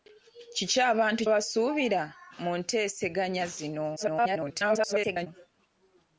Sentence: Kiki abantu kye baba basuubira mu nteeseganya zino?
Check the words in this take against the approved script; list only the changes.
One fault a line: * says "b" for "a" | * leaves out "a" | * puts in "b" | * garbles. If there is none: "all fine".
* leaves out "kye baba"
* garbles